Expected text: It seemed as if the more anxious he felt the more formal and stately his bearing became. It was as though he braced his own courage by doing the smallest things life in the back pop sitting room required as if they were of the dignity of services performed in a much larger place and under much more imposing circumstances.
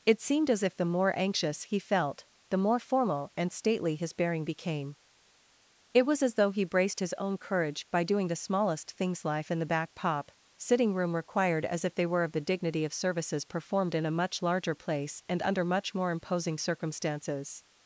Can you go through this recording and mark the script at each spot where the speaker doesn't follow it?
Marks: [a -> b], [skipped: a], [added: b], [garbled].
It seemed as if the more anxious he felt the more formal and stately his bearing became. It was as though he braced his own courage by doing the smallest things life in the back pop sitting room required as if they were of the dignity of services performed in a much larger place and under much more imposing circumstances.